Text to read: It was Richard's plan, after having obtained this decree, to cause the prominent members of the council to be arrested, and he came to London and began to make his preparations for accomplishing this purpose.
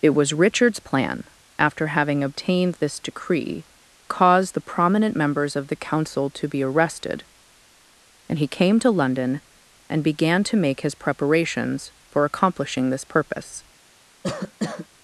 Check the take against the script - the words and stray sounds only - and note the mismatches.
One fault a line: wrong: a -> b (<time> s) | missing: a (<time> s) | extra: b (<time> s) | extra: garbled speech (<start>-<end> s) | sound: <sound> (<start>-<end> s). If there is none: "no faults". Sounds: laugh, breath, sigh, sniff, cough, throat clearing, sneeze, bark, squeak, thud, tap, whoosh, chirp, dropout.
missing: to (3.6 s)
sound: cough (14.2-14.9 s)